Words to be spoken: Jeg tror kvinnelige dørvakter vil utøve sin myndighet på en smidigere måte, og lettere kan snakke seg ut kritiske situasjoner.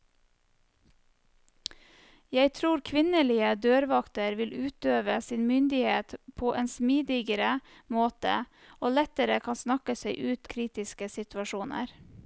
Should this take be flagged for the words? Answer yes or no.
no